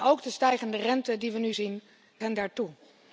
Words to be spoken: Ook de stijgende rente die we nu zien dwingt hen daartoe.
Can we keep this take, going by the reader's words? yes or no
no